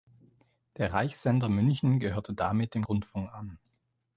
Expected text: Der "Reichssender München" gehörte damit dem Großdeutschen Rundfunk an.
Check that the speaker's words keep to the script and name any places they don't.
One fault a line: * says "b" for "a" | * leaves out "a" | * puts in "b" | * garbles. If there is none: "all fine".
* leaves out "Großdeutschen"